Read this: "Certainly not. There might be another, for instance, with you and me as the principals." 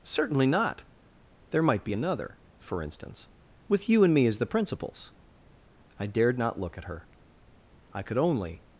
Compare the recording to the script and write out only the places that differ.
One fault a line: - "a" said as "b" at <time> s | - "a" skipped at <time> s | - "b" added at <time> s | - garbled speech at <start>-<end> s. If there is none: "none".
- "I dared not look at her I could only" added at 6.0 s